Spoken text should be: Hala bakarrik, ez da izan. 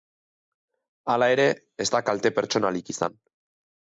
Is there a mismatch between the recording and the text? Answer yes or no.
yes